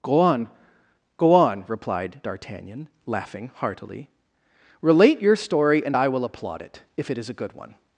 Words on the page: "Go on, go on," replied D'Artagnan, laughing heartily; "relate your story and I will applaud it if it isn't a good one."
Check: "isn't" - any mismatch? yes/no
yes